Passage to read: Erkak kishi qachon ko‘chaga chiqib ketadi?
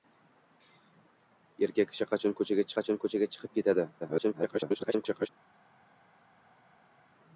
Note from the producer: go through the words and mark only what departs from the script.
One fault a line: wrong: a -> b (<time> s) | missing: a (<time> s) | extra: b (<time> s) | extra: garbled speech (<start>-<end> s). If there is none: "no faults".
extra: qachon ko‘chaga (2.8 s)
extra: garbled speech (4.0-5.3 s)